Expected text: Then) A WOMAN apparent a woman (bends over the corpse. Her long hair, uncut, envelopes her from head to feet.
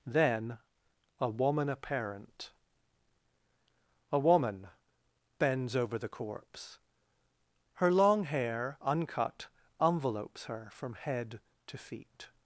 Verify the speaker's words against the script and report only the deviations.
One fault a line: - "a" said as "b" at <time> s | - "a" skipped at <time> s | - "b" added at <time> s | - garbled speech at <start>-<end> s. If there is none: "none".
none